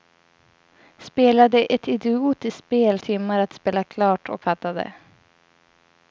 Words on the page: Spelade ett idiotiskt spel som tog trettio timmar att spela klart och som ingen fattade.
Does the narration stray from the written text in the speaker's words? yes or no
yes